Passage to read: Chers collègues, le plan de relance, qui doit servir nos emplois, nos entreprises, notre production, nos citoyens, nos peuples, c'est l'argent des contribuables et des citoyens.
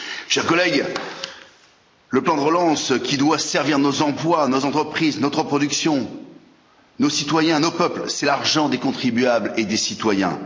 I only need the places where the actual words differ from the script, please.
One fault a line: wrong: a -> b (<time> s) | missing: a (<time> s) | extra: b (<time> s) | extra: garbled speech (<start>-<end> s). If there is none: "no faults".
no faults